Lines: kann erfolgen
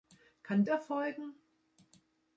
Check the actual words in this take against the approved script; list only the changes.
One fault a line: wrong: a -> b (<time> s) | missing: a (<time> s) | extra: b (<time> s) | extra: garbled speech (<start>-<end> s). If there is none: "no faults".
no faults